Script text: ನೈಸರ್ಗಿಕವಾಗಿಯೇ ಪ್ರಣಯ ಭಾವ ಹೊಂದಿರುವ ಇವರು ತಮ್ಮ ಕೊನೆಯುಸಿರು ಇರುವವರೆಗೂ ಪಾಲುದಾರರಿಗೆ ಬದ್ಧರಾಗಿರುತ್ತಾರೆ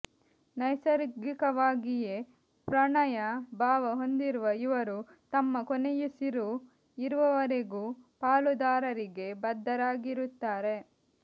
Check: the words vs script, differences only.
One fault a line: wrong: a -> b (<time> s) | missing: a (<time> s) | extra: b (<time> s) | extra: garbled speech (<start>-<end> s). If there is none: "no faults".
no faults